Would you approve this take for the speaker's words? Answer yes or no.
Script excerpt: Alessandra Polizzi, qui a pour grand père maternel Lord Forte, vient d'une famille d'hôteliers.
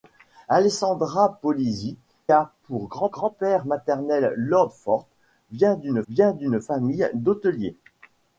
no